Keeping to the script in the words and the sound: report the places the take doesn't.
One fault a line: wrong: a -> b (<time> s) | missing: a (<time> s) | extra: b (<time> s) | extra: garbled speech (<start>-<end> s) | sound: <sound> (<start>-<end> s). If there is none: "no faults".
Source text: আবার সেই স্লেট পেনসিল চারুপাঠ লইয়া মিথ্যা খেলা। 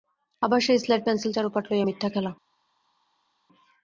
no faults